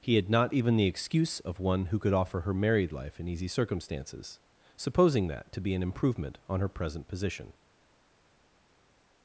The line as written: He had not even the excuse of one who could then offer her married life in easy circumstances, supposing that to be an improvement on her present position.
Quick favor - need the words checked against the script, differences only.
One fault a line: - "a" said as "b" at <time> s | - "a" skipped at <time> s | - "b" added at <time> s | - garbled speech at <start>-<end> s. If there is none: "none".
- "then" skipped at 2.1 s